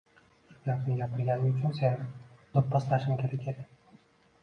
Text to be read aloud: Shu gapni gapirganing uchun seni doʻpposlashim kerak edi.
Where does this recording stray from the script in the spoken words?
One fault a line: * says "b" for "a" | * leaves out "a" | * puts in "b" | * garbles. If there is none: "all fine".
all fine